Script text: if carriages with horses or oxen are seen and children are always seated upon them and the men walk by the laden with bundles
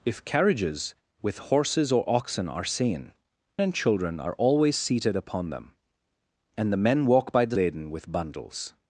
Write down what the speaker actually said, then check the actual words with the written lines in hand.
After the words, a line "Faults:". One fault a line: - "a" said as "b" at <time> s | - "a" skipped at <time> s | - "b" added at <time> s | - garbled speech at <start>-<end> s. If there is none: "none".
if carriages with horses or oxen are seen and children are always seated upon them and the men walk by the laden with bundles
Faults:
none